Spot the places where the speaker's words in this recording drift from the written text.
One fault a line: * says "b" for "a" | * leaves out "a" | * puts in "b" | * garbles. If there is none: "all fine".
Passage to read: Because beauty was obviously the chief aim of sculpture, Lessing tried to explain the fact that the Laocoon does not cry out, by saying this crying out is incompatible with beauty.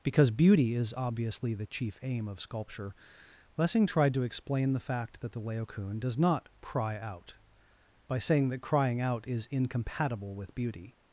* says "is" for "was"
* says "that" for "this"